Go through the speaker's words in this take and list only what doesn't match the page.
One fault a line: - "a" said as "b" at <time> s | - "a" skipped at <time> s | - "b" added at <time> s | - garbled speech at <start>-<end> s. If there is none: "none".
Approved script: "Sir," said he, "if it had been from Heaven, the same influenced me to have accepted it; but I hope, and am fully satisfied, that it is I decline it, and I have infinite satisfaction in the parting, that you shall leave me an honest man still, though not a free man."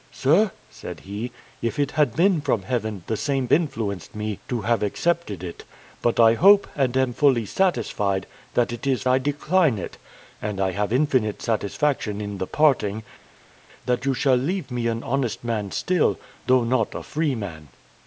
none